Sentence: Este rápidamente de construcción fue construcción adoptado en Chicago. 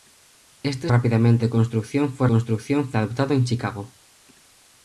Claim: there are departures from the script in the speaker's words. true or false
false